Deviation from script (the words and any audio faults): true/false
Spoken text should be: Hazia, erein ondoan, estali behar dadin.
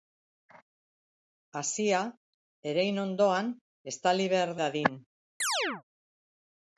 true